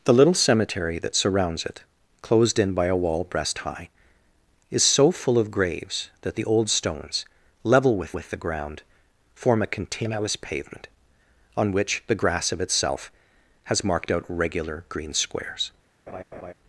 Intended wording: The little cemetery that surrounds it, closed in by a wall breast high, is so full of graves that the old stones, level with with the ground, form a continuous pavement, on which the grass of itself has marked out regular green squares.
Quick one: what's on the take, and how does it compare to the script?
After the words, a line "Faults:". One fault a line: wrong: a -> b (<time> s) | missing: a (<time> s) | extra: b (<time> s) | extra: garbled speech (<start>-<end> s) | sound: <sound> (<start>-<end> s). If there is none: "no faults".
The little cemetery that surrounds it, closed in by a wall breast high, is so full of graves that the old stones, level with with the ground, form a continuous pavement, on which the grass of itself has marked out regular green squares.
Faults:
sound: laugh (16.1-16.5 s)